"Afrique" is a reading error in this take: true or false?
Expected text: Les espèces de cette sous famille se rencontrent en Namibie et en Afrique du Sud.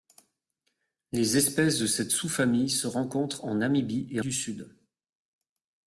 true